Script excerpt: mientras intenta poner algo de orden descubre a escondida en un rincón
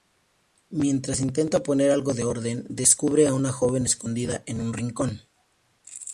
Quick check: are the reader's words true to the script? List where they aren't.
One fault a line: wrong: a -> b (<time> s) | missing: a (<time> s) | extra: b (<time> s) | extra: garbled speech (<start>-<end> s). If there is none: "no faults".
extra: una joven (3.3 s)